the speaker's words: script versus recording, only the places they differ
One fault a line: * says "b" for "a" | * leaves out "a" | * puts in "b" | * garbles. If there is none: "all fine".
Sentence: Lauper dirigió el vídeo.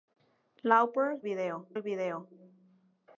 * says "vídeo" for "dirigió"